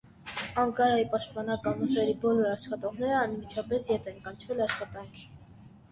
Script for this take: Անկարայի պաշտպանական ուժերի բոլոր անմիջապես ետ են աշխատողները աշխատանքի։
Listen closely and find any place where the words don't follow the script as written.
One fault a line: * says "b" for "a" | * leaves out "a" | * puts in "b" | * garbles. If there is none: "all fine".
* puts in "աշխատողները"
* says "կանչվել" for "աշխատողները"